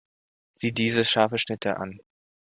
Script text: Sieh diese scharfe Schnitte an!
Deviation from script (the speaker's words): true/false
false